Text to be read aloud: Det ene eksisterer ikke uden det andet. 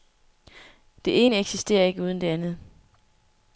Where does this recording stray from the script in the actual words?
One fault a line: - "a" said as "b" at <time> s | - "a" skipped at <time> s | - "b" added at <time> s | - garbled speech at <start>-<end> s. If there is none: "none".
none